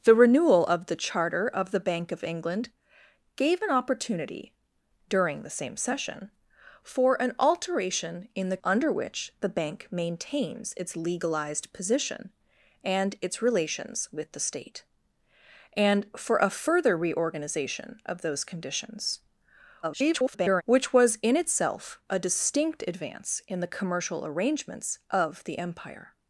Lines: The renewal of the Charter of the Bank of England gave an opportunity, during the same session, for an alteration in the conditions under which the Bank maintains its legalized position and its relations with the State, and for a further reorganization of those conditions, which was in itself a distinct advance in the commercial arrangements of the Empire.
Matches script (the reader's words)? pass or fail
fail